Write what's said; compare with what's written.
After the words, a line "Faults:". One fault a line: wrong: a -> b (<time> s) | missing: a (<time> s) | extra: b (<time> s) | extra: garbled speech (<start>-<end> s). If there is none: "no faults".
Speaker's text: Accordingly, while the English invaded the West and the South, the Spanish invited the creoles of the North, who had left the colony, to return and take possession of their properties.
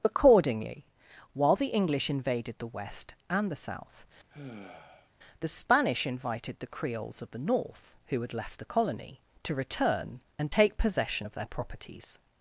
Accordingly, while the English invaded the West and the South, the Spanish invited the creoles of the North, who had left the colony, to return and take possession of their properties.
Faults:
no faults